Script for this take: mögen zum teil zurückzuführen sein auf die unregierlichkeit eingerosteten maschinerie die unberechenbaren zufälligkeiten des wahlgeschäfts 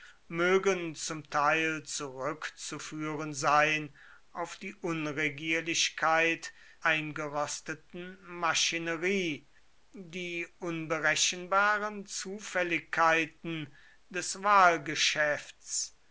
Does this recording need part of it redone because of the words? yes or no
no